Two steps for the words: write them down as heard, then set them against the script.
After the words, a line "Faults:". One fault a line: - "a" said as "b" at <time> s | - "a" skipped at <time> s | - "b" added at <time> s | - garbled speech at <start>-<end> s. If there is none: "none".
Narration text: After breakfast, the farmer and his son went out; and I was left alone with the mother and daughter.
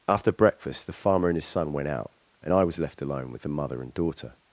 After breakfast, the farmer and his son went out; and I was left alone with the mother and daughter.
Faults:
none